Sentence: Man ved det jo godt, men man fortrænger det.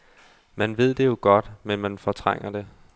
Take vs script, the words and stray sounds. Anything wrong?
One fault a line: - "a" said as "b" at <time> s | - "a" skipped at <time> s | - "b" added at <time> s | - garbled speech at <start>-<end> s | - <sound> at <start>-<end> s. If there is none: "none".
none